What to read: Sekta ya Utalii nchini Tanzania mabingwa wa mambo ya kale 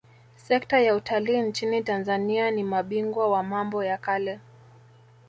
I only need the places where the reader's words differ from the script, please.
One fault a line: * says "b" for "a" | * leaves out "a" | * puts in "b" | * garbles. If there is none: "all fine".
* puts in "ni"